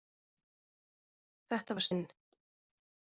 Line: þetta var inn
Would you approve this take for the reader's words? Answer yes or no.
yes